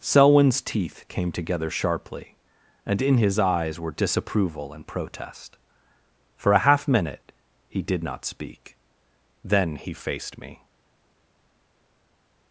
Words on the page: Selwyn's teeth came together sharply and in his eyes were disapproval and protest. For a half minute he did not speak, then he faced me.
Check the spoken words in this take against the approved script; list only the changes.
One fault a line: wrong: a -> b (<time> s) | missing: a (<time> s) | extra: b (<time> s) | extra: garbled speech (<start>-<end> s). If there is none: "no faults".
no faults